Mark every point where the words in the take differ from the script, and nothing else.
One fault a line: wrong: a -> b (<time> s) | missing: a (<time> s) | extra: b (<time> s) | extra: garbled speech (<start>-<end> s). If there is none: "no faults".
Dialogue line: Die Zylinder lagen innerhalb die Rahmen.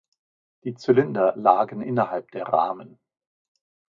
wrong: die -> der (2.3 s)